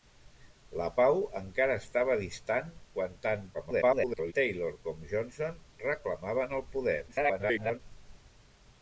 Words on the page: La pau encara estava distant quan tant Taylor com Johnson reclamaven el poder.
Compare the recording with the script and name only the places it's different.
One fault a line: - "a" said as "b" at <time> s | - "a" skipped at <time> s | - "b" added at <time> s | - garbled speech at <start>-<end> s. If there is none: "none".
- garbled speech at 3.5-4.3 s
- garbled speech at 7.1-7.8 s